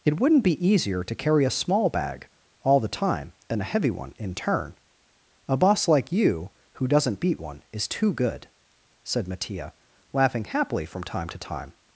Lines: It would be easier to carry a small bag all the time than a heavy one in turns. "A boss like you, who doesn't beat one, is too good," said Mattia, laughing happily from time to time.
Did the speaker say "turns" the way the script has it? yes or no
no